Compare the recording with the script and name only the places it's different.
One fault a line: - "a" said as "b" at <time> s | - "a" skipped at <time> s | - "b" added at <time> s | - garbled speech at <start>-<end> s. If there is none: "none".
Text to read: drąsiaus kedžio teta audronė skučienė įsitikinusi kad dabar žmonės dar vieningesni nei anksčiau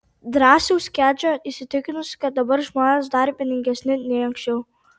- "teta audronė skučienė" skipped at 1.3 s